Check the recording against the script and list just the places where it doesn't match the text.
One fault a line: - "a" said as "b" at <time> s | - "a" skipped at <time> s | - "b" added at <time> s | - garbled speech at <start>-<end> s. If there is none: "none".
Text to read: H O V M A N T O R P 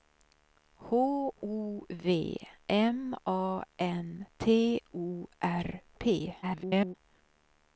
- garbled speech at 6.4-7.0 s